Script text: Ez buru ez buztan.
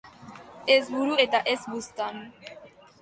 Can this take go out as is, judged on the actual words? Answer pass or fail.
fail